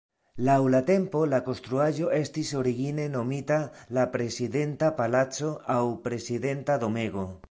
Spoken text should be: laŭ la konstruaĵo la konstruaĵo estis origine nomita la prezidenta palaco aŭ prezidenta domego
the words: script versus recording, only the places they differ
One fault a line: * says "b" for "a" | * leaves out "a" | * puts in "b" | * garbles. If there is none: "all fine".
* says "tempo" for "konstruaĵo"